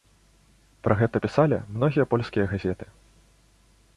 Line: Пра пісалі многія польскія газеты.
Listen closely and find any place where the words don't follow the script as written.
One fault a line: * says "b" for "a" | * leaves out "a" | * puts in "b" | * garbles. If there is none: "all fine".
* puts in "гэта"